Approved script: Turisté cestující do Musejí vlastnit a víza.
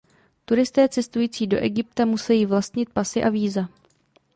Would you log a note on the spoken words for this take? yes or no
yes